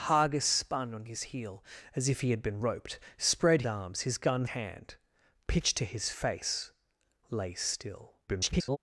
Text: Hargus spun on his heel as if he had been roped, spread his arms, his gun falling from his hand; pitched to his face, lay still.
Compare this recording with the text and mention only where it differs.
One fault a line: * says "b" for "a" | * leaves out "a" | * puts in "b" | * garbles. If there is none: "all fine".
* leaves out "his"
* leaves out "falling from his"
* garbles